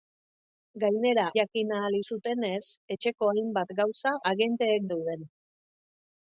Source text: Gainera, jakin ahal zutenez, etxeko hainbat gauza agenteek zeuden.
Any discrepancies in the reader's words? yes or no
no